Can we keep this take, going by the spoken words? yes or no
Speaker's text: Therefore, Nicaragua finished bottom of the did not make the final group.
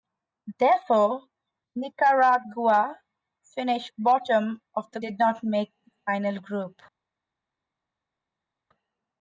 yes